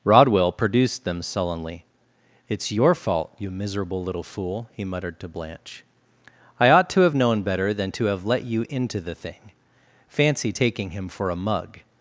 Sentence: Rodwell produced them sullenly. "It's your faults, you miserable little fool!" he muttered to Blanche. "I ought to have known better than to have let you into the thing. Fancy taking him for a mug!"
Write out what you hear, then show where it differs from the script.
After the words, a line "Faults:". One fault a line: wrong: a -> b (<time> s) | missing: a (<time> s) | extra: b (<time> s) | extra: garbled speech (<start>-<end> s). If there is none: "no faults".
Rodwell produced them sullenly. "It's your fault, you miserable little fool!" he muttered to Blanche. "I ought to have known better than to have let you into the thing. Fancy taking him for a mug!"
Faults:
wrong: faults -> fault (3.0 s)